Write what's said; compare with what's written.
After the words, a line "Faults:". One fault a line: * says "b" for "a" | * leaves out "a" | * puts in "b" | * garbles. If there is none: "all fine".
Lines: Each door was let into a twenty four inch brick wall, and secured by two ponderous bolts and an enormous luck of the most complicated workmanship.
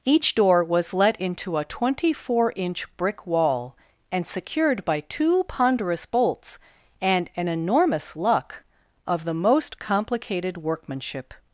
Each door was let into a twenty four inch brick wall, and secured by two ponderous bolts and an enormous luck of the most complicated workmanship.
Faults:
all fine